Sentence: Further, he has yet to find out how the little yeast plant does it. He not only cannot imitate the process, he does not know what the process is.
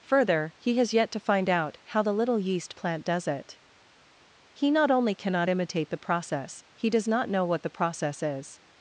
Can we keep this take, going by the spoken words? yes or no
yes